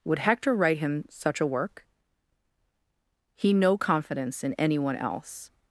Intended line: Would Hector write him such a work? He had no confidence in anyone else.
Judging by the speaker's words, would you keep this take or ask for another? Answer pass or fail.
fail